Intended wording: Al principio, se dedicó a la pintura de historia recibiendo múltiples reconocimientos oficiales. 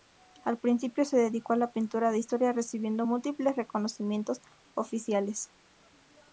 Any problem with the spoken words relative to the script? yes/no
no